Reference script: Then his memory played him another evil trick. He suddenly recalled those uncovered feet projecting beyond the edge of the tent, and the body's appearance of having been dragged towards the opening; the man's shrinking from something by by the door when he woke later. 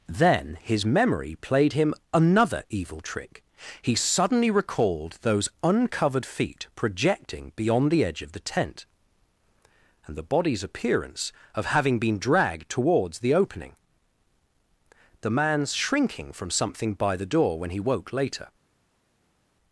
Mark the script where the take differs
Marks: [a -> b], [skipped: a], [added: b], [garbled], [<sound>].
Then his memory played him another evil trick. He suddenly recalled those uncovered feet projecting beyond the edge of the tent, and the body's appearance of having been dragged towards the opening; the man's shrinking from something by [skipped: by] the door when he woke later.